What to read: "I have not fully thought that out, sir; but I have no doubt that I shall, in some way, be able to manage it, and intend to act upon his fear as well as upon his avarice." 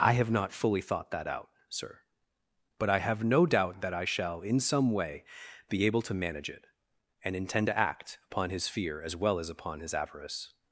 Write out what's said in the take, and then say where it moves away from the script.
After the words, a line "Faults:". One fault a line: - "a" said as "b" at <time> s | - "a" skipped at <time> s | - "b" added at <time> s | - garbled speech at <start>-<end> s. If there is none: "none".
"I have not fully thought that out, sir; but I have no doubt that I shall, in some way, be able to manage it, and intend to act upon his fear as well as upon his avarice."
Faults:
none